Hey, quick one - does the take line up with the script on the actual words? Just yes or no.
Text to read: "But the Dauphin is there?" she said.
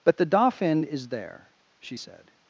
yes